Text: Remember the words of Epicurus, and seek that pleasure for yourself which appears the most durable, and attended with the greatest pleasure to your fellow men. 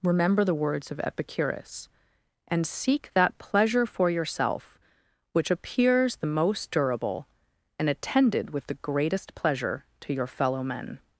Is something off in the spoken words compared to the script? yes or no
no